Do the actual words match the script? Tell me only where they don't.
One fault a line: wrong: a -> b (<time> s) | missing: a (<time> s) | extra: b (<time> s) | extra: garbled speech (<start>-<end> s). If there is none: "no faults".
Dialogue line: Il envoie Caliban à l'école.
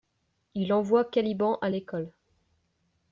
no faults